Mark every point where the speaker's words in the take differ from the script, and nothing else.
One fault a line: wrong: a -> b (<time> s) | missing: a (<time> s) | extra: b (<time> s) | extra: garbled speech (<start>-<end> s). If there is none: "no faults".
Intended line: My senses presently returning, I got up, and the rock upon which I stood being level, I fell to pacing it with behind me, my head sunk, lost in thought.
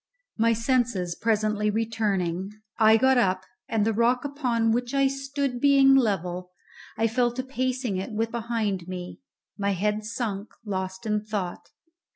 no faults